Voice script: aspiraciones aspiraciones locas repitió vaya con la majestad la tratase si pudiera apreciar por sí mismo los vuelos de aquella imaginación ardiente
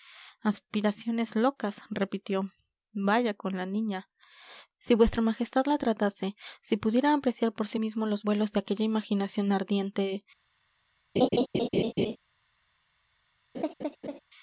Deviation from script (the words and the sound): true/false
true